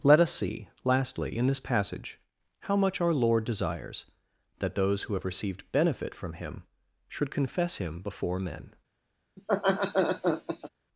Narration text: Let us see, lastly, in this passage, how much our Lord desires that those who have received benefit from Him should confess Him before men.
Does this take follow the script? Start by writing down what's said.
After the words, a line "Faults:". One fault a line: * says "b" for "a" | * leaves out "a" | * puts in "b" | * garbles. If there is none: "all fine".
Let us see, lastly, in this passage, how much our Lord desires that those who have received benefit from Him should confess Him before men.
Faults:
all fine